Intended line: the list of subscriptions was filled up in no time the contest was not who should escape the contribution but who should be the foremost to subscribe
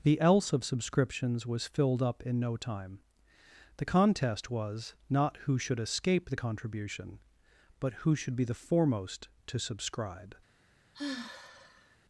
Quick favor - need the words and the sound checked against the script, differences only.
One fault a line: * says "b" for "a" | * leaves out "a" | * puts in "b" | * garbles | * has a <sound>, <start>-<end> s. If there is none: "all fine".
* says "else" for "list"
* has a sigh, 10.9-12.0 s